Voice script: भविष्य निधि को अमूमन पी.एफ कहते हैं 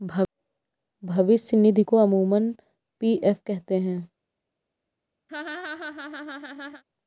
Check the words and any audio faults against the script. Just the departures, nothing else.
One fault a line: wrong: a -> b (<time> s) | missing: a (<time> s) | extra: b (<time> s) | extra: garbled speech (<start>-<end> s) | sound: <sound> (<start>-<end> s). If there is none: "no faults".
sound: laugh (5.3-6.8 s)